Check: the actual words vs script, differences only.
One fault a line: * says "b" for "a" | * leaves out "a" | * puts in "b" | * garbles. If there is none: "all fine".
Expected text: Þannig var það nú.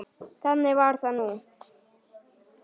all fine